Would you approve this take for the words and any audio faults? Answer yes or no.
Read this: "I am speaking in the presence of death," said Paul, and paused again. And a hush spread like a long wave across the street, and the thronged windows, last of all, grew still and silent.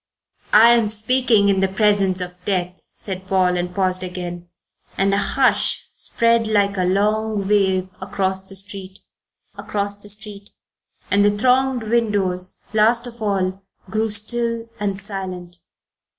no